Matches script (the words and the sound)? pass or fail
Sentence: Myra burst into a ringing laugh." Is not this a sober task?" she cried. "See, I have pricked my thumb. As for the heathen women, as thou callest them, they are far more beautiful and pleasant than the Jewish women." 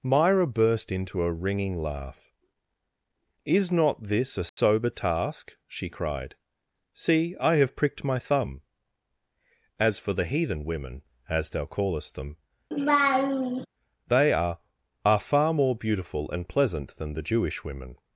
fail